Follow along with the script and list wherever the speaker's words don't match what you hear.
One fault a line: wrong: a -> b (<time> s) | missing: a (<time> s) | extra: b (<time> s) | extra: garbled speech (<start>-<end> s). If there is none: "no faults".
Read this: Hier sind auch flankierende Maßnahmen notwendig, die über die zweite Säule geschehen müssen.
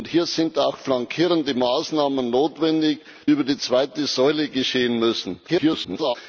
missing: die (3.0 s)
extra: garbled speech (5.5-6.2 s)